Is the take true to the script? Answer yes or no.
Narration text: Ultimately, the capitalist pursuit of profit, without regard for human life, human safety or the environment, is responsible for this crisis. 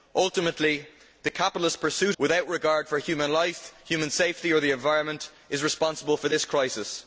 no